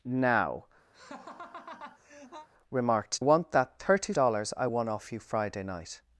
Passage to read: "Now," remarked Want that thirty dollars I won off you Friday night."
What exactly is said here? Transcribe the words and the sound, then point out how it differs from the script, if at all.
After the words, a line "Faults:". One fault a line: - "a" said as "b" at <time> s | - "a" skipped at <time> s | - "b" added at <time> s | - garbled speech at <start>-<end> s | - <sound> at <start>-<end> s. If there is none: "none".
"Now," remarked Want that thirty dollars I won off you Friday night."
Faults:
- laugh at 0.9-2.5 s